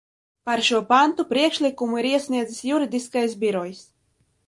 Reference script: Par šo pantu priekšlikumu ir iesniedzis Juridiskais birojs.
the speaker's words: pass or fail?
pass